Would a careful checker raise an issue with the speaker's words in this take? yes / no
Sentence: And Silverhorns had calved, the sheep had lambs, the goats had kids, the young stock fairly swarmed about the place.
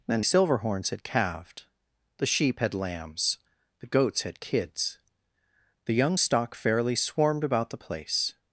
no